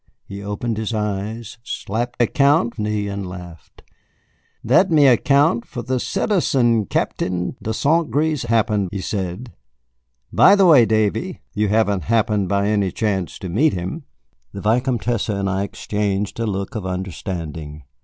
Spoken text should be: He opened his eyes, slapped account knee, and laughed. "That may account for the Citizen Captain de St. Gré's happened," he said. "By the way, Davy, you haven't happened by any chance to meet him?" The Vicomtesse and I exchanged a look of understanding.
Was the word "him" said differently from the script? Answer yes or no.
no